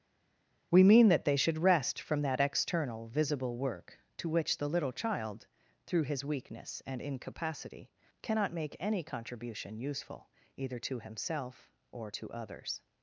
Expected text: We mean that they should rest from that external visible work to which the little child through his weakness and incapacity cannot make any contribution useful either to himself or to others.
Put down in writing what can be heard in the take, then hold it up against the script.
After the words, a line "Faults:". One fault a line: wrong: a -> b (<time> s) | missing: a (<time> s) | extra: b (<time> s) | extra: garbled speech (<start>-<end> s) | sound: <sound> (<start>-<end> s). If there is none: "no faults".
We mean that they should rest from that external visible work to which the little child through his weakness and incapacity cannot make any contribution useful either to himself or to others.
Faults:
no faults